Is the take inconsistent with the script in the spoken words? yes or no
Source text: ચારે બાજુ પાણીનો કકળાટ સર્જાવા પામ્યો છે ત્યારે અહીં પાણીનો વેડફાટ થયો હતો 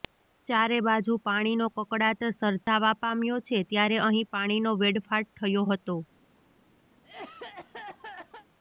no